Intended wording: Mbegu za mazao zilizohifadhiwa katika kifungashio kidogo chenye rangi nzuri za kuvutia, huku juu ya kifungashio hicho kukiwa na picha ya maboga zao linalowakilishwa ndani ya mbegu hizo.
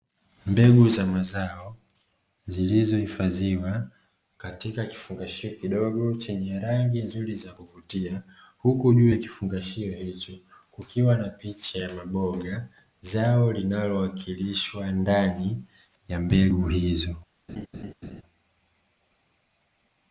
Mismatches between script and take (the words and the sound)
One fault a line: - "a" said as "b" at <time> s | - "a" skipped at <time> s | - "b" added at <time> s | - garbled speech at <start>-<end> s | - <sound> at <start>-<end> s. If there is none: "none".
- laugh at 17.5-18.2 s